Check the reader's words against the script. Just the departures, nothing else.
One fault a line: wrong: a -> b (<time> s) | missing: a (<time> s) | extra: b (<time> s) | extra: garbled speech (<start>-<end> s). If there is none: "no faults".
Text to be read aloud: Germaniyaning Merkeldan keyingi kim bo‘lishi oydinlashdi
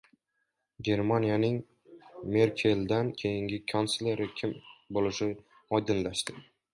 extra: kansleri (3.7 s)